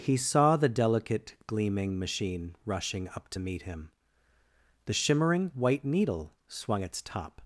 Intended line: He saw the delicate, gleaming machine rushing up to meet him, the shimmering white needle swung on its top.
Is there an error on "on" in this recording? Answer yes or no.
yes